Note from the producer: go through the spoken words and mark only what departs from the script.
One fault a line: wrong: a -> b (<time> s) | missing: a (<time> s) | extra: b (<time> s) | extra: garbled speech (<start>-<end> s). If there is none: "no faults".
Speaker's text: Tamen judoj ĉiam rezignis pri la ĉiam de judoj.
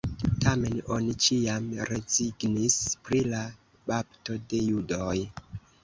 wrong: judoj -> oni (0.9 s)
wrong: ĉiam -> bapto (3.9 s)